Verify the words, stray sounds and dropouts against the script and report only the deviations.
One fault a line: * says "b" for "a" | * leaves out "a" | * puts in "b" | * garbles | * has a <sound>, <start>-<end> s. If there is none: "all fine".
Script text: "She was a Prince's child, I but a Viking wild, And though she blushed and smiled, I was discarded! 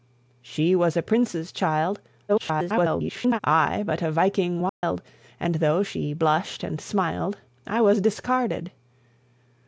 * garbles
* has a dropout, 4.7-4.8 s